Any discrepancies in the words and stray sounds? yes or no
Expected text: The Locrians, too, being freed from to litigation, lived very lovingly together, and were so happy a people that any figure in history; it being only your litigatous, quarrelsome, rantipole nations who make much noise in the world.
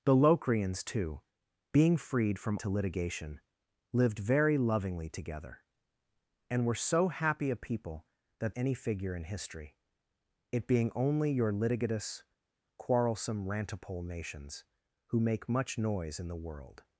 no